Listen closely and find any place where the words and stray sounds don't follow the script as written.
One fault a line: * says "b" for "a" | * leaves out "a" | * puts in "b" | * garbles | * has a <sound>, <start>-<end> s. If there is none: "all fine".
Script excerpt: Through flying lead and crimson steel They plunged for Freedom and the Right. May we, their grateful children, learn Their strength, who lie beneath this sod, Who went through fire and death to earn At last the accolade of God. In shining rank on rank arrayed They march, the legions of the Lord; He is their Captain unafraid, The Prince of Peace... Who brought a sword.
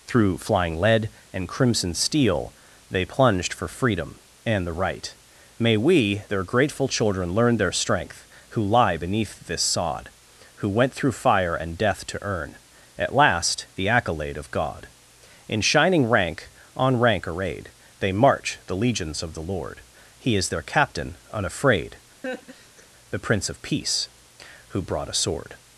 * has a laugh, 22.2-22.9 s